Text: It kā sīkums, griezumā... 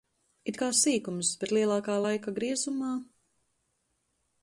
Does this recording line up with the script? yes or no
no